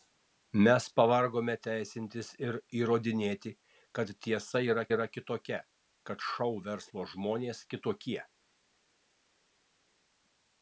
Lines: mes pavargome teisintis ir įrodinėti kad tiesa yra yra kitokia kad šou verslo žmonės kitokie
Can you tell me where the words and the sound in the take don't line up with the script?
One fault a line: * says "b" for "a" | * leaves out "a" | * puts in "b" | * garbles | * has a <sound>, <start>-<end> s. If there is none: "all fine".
all fine